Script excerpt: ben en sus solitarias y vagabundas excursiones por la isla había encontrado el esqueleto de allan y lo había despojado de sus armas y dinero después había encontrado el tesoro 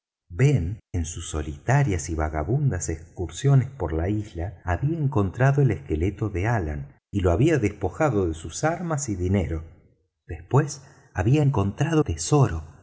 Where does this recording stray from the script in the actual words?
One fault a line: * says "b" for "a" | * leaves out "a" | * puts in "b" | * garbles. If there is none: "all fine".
* leaves out "el"